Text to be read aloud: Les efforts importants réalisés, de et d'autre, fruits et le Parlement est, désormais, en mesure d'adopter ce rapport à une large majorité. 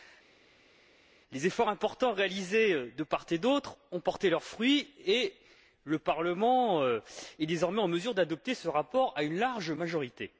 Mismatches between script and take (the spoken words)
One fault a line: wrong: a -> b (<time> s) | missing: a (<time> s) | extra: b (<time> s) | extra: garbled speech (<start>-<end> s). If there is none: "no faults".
extra: part (3.0 s)
extra: ont porté leurs (3.9 s)